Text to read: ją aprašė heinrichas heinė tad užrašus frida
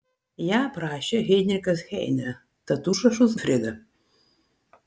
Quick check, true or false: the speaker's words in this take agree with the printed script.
true